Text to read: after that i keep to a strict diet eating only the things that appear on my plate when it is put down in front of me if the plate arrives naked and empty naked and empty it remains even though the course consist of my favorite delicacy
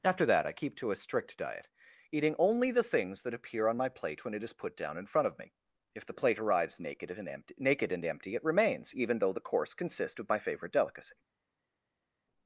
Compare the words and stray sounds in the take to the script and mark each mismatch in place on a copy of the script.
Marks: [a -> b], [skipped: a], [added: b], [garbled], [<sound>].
after that i keep to a strict diet eating only the things that appear on my plate when it is put down in front of me if the plate arrives naked and empty naked and empty it remains even though the course [consist -> consists] of my favorite delicacy